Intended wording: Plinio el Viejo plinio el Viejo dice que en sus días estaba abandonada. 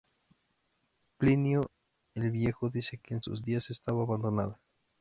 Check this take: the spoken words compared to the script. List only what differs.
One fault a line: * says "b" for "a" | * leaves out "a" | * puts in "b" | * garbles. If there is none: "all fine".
* leaves out "plinio el Viejo"